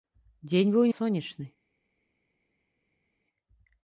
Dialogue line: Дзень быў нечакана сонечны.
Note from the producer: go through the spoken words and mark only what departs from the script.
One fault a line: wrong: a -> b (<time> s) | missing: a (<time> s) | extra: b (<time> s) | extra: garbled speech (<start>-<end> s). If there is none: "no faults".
missing: нечакана (0.9 s)